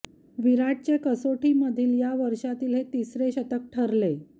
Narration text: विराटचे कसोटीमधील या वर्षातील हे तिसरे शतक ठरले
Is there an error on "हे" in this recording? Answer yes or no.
no